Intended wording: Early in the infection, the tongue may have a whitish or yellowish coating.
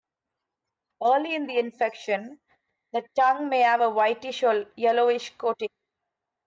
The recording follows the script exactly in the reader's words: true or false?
true